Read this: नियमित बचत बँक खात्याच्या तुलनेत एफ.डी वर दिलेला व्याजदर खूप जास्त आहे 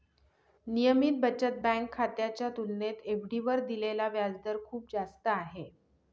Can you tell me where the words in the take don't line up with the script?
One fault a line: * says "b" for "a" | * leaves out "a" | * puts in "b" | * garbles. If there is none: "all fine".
all fine